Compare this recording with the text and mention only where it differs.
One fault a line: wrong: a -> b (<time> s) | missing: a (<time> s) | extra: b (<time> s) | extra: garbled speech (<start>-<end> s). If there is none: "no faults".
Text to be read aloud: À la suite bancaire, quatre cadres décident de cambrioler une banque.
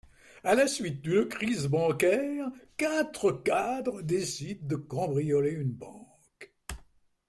extra: d'une crise (1.0 s)